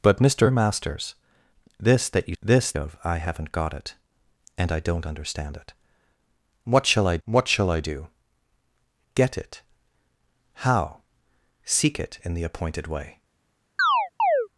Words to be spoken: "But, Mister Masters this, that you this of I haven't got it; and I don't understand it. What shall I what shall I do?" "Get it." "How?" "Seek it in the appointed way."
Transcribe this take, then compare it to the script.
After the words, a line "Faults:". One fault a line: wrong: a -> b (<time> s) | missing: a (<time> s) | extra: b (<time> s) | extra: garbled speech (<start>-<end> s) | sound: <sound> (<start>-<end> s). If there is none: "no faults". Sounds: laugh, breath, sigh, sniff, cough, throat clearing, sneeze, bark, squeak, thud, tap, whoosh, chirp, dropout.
"But, Mister Masters this, that you this of I haven't got it; and I don't understand it. What shall I what shall I do?" "Get it." "How?" "Seek it in the appointed way."
Faults:
sound: chirp (13.8-14.5 s)